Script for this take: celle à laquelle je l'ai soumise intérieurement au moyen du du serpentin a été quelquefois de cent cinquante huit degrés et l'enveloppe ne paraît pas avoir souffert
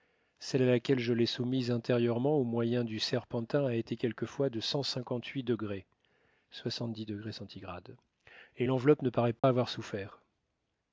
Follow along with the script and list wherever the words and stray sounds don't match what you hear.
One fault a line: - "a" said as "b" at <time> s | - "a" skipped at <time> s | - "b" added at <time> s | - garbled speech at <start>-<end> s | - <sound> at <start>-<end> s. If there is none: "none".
- "du" skipped at 3.0 s
- dropout at 9.4-9.4 s